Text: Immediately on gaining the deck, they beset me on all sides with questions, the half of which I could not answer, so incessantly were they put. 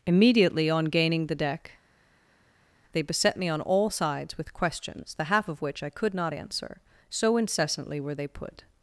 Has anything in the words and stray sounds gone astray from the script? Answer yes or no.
no